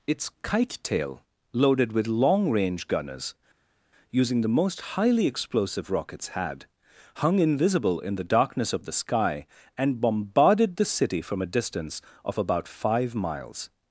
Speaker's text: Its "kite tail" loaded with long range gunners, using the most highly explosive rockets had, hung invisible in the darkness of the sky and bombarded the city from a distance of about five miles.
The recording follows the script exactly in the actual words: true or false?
true